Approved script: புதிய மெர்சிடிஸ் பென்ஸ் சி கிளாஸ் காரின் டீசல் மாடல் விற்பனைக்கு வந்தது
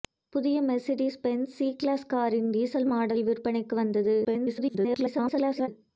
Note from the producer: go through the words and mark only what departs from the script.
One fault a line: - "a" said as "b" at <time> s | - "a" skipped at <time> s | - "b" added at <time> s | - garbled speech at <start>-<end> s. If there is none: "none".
- garbled speech at 4.2-5.7 s